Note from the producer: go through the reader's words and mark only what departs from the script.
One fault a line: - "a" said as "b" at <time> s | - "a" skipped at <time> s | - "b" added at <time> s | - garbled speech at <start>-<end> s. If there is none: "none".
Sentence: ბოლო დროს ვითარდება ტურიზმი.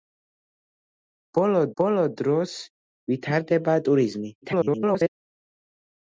- "ბოლო" added at 1.8 s
- garbled speech at 4.4-5.1 s